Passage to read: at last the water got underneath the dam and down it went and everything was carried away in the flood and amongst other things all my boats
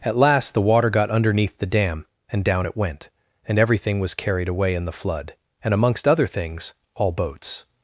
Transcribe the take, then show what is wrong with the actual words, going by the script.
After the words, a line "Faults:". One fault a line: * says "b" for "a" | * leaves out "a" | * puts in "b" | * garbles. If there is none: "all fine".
at last the water got underneath the dam and down it went and everything was carried away in the flood and amongst other things all boats
Faults:
* leaves out "my"